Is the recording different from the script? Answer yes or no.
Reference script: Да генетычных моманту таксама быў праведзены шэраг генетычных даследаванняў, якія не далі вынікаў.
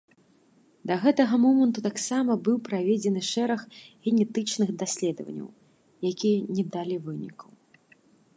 yes